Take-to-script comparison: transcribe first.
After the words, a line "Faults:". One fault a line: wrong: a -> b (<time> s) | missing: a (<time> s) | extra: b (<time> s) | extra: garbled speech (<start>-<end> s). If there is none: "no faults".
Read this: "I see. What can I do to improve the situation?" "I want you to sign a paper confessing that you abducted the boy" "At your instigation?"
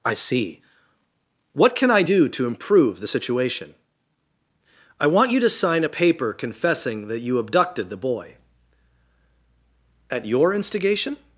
"I see. What can I do to improve the situation?" "I want you to sign a paper confessing that you abducted the boy" "At your instigation?"
Faults:
no faults